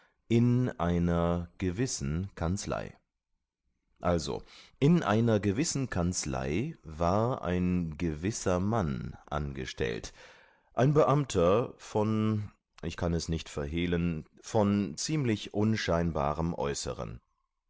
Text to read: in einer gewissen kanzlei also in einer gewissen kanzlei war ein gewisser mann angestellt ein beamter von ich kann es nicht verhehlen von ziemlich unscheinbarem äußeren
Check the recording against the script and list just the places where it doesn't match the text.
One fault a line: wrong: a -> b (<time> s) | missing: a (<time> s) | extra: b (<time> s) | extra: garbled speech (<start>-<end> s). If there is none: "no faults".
no faults